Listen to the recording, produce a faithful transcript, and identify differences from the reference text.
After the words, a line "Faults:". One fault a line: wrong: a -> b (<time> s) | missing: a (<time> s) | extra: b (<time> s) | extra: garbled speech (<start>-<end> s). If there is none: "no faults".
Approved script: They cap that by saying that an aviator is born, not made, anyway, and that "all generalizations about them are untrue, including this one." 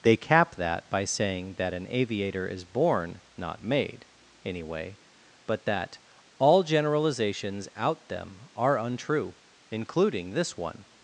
They cap that by saying that an aviator is born, not made, anyway, but that "all generalizations out them are untrue, including this one."
Faults:
wrong: and -> but (5.5 s)
wrong: about -> out (7.8 s)